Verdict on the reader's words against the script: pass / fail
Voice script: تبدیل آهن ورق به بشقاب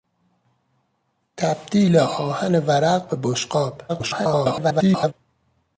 fail